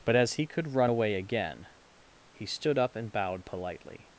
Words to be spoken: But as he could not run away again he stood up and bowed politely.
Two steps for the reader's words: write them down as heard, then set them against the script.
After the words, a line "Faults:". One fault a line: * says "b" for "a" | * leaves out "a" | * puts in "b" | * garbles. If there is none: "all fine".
But as he could run away again he stood up and bowed politely.
Faults:
* leaves out "not"